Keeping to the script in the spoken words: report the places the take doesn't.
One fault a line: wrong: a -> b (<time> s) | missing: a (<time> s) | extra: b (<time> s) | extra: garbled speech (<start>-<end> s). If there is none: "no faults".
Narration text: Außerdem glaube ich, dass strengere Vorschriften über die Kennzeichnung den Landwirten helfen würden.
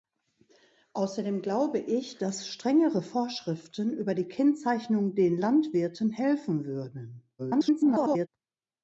extra: garbled speech (7.4-8.3 s)